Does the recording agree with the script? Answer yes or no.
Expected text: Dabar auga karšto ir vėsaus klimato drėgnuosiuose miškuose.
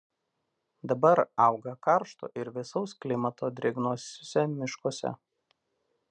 yes